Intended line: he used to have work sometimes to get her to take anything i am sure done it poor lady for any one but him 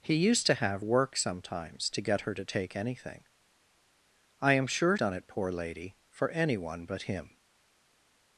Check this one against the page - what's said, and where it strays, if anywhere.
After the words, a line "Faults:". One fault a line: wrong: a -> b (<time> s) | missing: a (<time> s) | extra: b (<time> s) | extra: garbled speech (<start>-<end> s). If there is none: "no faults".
he used to have work sometimes to get her to take anything i am sure done it poor lady for any one but him
Faults:
no faults